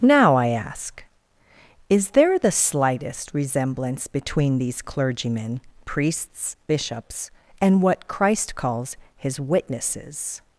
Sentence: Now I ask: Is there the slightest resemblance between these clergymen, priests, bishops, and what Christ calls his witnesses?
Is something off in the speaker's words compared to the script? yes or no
no